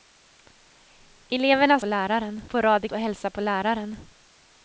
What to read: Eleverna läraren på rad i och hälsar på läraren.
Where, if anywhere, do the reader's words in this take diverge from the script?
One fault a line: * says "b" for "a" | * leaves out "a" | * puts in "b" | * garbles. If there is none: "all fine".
all fine